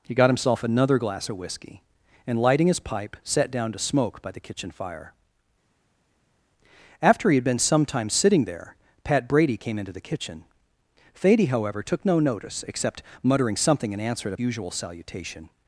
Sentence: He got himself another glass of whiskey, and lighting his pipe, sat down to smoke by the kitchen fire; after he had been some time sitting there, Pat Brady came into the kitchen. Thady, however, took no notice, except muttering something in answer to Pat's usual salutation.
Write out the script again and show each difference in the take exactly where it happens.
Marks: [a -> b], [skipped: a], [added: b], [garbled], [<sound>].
He got himself another glass of whiskey, and lighting his pipe, sat down to smoke by the kitchen fire; after he had been some time sitting there, Pat Brady came into the kitchen. Thady, however, took no notice, except muttering something in answer to [skipped: Pat's] usual salutation.